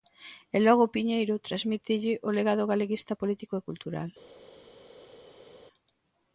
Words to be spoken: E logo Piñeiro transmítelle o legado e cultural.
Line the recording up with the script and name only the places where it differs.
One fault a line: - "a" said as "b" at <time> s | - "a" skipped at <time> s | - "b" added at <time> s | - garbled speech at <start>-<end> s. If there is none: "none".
- "galeguista político" added at 2.7 s